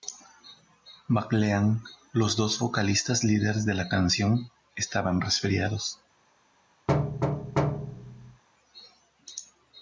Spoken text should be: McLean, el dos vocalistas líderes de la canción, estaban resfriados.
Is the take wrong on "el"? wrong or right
wrong